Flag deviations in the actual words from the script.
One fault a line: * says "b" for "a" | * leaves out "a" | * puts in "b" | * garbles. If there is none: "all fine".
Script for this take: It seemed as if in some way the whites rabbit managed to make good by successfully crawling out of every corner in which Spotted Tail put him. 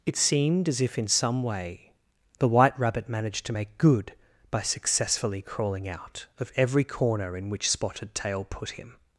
* says "white" for "whites"